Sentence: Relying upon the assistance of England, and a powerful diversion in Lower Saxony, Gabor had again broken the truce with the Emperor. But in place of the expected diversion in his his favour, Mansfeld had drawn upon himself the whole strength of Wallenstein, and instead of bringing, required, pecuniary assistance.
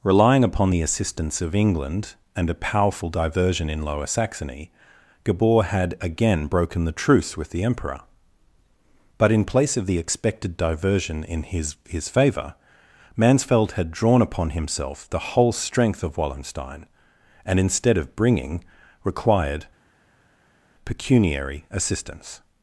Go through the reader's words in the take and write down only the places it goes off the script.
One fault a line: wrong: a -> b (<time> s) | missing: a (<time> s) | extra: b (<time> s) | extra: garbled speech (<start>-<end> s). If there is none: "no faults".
no faults